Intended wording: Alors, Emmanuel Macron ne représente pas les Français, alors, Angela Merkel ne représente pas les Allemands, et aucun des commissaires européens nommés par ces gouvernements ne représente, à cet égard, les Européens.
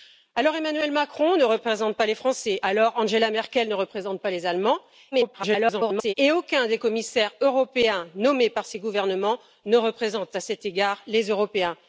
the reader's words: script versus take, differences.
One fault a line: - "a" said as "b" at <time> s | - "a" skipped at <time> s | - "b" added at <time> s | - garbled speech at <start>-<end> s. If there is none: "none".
- garbled speech at 5.1-6.1 s